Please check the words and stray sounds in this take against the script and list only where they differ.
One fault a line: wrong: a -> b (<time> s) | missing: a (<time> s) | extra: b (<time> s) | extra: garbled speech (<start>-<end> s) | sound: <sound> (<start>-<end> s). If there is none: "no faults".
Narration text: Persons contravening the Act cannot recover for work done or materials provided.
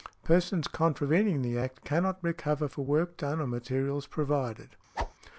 sound: whoosh (5.0-5.1 s)